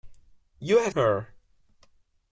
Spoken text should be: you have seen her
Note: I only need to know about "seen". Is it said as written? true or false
false